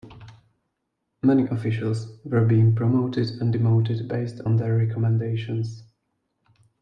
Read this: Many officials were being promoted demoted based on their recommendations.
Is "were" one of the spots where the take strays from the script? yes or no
no